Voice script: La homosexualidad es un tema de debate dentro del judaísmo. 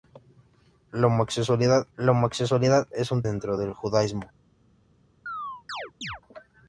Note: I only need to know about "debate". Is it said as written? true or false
false